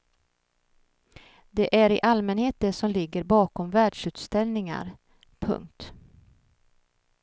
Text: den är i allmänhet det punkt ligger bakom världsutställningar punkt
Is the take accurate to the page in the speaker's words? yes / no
no